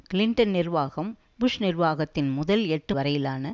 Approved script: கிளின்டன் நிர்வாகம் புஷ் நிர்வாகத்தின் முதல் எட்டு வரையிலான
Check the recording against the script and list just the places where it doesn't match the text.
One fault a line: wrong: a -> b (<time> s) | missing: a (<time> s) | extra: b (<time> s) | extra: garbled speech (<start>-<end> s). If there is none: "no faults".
no faults